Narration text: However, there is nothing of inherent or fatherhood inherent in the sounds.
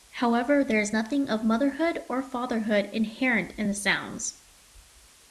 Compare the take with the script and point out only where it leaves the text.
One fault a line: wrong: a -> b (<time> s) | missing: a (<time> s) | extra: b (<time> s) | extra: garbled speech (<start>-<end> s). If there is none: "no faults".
wrong: inherent -> motherhood (1.4 s)